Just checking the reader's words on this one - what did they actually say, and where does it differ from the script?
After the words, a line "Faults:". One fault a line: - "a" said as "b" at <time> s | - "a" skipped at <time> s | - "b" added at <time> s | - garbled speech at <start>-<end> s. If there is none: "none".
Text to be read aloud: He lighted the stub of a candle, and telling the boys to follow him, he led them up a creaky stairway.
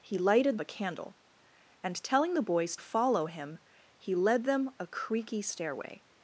He lighted a candle, and telling the boys follow him, he led them a creaky stairway.
Faults:
- "the stub of" skipped at 0.6 s
- "to" skipped at 2.8 s
- "up" skipped at 4.7 s